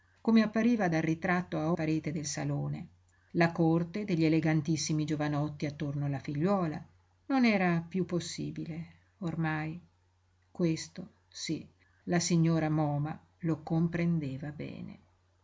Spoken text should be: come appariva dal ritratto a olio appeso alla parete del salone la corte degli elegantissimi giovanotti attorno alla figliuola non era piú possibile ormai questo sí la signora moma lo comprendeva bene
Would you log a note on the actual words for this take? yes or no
yes